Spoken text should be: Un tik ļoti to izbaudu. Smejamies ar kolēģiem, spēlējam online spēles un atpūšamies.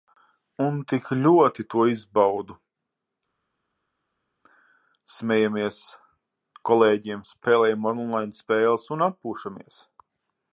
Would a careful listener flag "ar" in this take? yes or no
yes